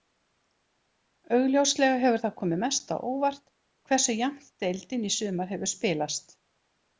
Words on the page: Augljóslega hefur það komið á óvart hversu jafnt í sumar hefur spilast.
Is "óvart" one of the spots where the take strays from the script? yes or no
no